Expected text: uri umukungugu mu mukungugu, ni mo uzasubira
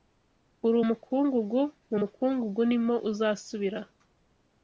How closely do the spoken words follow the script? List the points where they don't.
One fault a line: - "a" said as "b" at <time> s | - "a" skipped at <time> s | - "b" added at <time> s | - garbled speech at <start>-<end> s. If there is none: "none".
none